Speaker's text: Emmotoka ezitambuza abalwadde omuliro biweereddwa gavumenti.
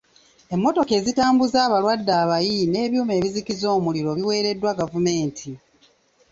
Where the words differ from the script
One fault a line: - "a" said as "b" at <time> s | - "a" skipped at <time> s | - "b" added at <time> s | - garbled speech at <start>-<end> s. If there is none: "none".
- "abayi n'ebyuma ebizikiza" added at 2.2 s